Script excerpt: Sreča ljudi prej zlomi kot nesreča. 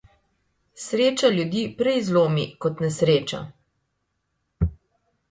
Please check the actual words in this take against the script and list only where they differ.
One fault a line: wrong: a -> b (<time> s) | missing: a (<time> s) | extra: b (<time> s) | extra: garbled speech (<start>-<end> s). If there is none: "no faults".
no faults